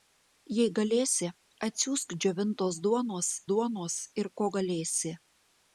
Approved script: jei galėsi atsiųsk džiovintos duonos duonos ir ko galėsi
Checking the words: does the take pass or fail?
pass